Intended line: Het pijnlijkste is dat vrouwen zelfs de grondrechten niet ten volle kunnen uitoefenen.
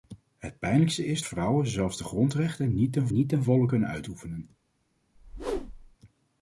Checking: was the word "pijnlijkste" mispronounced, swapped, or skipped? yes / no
no